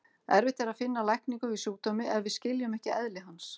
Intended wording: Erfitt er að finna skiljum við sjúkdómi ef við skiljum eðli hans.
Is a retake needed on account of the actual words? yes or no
yes